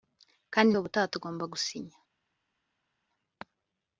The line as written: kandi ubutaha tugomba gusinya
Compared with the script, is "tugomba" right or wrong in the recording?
right